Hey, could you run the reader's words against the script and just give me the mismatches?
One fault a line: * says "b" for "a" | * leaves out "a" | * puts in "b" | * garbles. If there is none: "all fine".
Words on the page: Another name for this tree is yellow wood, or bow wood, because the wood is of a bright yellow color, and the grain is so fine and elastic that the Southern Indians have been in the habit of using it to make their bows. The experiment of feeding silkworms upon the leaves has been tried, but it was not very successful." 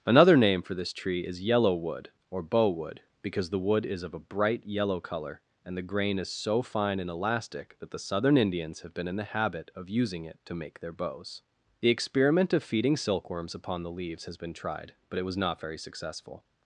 all fine